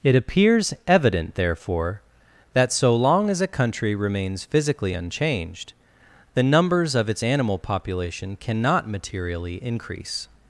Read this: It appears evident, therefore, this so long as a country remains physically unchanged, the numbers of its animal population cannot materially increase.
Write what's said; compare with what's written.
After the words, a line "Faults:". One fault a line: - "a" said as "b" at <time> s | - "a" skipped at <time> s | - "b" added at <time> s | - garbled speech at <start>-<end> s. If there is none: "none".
It appears evident, therefore, that so long as a country remains physically unchanged, the numbers of its animal population cannot materially increase.
Faults:
- "this" said as "that" at 2.5 s